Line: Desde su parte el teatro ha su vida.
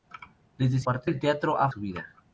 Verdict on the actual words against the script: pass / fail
pass